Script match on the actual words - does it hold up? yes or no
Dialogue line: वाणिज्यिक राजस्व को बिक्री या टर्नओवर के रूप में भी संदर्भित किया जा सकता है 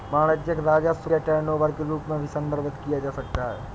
no